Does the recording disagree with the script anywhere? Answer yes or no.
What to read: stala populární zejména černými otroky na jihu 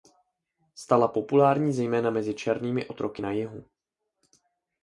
yes